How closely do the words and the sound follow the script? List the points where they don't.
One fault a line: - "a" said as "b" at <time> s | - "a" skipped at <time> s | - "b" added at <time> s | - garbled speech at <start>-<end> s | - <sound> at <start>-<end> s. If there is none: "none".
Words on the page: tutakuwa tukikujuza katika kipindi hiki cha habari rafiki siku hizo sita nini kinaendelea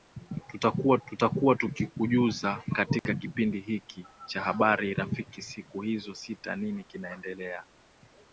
- "tutakuwa" added at 1.1 s
- dropout at 3.0-3.1 s